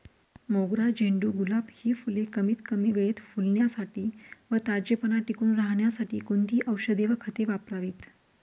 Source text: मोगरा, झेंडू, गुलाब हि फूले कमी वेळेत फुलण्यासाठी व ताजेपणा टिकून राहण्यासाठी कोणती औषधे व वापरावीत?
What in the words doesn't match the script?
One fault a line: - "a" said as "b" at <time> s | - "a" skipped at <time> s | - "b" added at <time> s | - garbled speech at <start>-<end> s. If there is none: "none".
- "कमीत" added at 2.3 s
- "खते" added at 7.2 s